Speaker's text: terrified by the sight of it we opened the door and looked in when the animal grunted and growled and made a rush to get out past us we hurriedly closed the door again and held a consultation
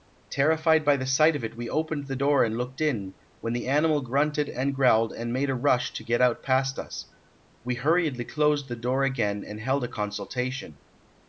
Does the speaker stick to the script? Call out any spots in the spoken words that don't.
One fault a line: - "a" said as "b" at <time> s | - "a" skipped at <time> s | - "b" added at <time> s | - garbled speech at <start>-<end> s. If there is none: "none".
none